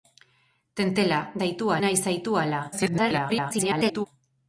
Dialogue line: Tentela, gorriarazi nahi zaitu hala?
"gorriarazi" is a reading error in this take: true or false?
true